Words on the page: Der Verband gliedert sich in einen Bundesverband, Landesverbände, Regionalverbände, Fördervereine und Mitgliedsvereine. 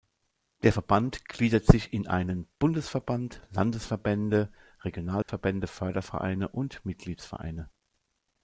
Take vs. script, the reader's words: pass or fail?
pass